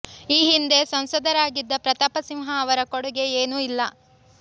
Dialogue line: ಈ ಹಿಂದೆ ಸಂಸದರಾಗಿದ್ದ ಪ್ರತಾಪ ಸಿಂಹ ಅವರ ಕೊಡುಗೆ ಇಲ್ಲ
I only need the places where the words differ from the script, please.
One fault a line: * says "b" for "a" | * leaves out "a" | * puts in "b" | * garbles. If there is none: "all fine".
* puts in "ಏನೂ"